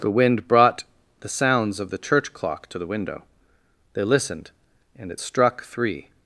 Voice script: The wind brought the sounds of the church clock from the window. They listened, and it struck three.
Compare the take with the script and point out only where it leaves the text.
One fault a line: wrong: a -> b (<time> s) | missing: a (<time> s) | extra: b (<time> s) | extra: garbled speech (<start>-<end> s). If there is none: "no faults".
wrong: from -> to (2.7 s)